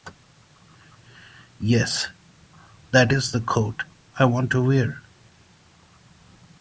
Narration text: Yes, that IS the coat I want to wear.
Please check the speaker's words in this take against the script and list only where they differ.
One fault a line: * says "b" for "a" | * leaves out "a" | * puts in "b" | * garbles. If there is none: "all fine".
all fine